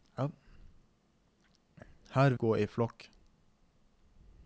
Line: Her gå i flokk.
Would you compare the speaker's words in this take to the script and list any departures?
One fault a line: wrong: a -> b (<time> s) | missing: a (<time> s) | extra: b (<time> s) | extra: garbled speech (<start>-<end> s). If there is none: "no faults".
no faults